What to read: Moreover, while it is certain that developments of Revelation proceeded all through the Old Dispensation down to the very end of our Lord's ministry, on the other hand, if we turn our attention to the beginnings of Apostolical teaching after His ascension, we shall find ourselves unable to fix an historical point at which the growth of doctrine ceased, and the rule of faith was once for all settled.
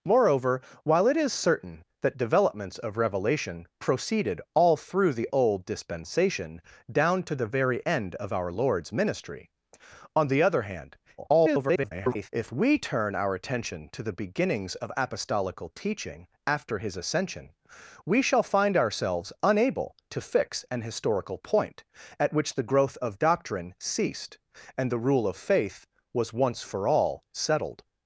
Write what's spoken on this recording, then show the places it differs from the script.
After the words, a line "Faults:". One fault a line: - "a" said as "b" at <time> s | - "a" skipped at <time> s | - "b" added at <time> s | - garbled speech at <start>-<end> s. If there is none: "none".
Moreover, while it is certain that developments of Revelation proceeded all through the Old Dispensation down to the very end of our Lord's ministry, on the other hand, [garbled] if we turn our attention to the beginnings of Apostolical teaching after His ascension, we shall find ourselves unable to fix an historical point at which the growth of doctrine ceased, and the rule of faith was once for all settled.
Faults:
- garbled speech at 11.2-12.3 s